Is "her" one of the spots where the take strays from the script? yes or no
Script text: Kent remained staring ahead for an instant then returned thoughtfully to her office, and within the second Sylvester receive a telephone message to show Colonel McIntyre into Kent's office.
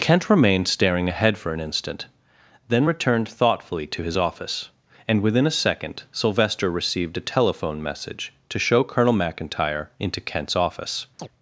yes